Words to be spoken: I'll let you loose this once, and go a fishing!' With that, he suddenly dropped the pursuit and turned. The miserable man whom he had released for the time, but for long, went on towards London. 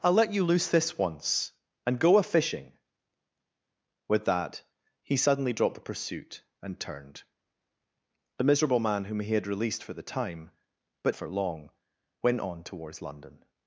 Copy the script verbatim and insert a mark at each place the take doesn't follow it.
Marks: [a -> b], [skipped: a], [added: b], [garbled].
I'll let you loose this once, and go a fishing!' With that, he suddenly dropped the pursuit and turned. The miserable man whom he had released for the time, but for long, went on towards London.